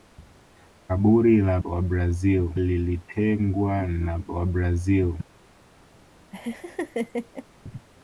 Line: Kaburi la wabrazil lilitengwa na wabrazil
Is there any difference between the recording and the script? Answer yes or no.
no